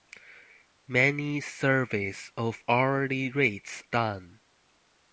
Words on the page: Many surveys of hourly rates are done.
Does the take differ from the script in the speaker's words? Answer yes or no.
yes